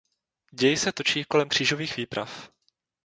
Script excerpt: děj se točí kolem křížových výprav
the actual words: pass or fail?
pass